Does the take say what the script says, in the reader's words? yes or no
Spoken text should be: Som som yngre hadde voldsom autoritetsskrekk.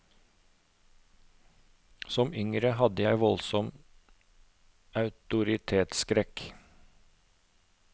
no